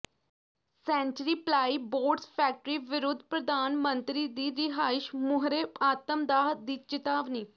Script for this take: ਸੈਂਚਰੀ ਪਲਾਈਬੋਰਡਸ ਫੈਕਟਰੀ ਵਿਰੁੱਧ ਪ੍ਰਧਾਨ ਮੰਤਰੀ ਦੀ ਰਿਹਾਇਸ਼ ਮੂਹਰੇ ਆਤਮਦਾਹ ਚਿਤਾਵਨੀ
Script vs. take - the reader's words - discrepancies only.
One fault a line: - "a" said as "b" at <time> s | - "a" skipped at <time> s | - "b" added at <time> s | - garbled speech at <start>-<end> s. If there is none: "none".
- "ਦੀ" added at 6.6 s